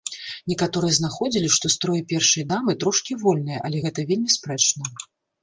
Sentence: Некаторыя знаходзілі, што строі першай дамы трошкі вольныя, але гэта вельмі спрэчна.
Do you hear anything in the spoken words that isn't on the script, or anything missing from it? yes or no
no